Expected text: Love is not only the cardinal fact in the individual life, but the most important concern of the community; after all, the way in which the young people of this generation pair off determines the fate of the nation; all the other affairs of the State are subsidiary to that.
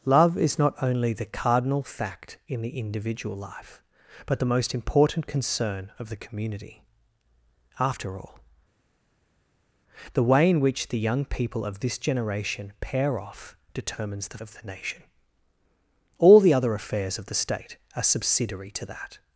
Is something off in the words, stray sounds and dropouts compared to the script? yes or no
yes